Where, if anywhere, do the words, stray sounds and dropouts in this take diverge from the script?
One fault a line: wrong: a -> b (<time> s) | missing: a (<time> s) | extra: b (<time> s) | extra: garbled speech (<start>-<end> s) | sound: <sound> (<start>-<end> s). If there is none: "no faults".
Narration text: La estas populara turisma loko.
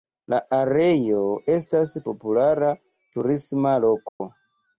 extra: areo (0.6 s)
sound: dropout (4.1-4.2 s)